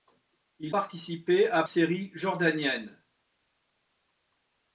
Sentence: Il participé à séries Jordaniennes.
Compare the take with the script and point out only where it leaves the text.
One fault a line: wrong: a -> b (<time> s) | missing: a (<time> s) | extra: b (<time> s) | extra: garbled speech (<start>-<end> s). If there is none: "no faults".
no faults